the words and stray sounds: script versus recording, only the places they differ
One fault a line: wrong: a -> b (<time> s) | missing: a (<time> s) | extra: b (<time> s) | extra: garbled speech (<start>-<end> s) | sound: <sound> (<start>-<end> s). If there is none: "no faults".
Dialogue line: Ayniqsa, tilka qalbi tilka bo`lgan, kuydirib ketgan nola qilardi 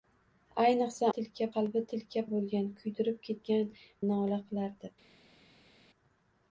no faults